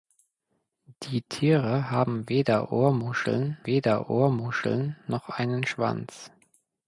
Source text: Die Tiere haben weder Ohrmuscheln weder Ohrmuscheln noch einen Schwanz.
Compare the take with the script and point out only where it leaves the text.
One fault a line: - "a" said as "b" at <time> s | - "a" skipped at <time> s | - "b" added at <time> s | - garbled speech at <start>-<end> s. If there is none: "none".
none